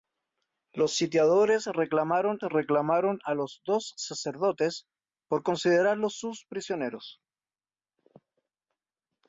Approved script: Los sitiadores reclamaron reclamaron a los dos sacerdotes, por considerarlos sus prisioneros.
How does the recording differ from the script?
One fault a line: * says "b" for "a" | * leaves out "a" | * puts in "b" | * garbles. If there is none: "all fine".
all fine